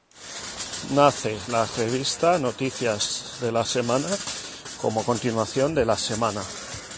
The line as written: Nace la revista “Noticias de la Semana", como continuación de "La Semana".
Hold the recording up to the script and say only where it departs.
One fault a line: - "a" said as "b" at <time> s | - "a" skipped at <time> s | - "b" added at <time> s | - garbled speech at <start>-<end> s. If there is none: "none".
none